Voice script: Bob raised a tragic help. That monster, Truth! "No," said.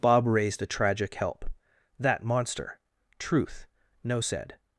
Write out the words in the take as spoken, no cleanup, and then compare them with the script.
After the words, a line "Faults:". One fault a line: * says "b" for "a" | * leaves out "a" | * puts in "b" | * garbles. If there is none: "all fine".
Bob raised a tragic help. That monster, Truth! "No," said.
Faults:
all fine